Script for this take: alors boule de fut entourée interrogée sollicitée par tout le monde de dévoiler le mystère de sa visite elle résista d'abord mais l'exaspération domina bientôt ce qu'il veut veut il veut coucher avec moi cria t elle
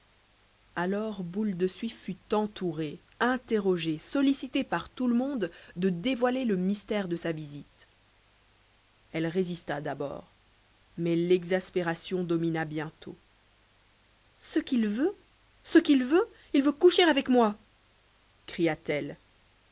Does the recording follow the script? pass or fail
fail